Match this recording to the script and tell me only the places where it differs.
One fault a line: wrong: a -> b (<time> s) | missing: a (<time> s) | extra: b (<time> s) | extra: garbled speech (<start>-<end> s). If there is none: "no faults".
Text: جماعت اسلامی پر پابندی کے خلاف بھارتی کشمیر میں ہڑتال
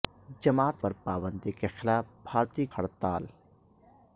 missing: اسلامی (0.8 s)
missing: کشمیر میں (2.7 s)